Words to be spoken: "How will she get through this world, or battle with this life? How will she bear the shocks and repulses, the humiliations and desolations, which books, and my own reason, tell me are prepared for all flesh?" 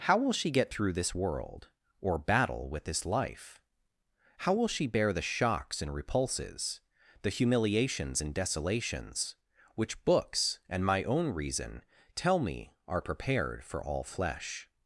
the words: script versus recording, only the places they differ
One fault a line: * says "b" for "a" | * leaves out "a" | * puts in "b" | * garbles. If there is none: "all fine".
all fine